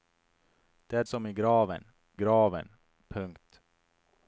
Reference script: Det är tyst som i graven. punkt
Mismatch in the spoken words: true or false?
true